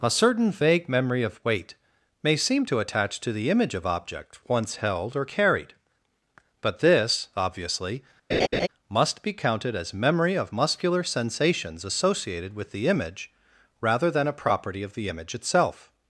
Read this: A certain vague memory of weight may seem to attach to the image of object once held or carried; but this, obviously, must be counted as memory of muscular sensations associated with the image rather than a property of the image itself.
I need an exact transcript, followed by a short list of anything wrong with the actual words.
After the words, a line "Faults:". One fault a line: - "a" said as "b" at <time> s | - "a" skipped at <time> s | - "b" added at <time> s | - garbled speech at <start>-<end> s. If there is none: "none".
A certain vague memory of weight may seem to attach to the image of object once held or carried; but this, obviously, must be counted as memory of muscular sensations associated with the image rather than a property of the image itself.
Faults:
none